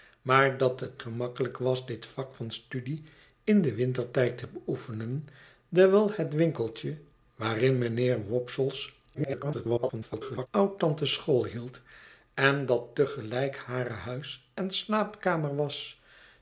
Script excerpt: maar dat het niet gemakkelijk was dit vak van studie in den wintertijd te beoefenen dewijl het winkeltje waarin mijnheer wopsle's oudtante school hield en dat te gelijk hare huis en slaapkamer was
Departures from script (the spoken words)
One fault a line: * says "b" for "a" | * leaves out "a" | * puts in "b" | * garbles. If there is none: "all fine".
* leaves out "niet"
* garbles